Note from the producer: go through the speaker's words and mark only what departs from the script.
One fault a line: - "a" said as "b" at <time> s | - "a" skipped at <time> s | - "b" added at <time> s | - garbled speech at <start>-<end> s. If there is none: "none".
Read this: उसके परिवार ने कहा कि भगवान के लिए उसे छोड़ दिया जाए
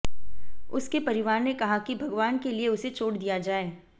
none